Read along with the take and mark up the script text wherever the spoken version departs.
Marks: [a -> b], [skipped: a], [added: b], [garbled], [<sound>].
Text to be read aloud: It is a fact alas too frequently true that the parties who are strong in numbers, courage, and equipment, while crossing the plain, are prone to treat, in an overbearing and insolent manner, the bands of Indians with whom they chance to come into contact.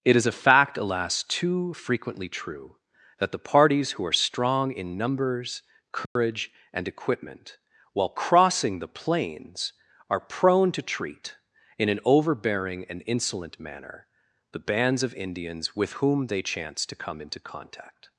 It is a fact alas too frequently true that the parties who are strong in numbers, courage, [dropout] and equipment, while crossing the [plain, -> plains] are prone to treat, in an overbearing and insolent manner, the bands of Indians with whom they chance to come into contact.